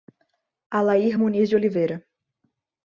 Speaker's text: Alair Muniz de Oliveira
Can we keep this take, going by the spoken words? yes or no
yes